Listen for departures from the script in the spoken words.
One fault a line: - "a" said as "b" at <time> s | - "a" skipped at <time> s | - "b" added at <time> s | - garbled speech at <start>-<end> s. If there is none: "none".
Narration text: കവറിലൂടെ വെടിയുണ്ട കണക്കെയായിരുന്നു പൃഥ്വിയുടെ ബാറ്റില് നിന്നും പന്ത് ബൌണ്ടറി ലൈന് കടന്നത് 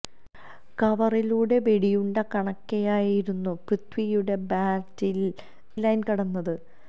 - "നിന്നും പന്ത് ബൌണ്ടറി" skipped at 5.3 s